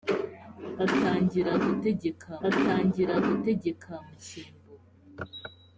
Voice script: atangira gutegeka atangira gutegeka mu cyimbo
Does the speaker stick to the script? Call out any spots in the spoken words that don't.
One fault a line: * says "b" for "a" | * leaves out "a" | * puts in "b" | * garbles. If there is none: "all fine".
all fine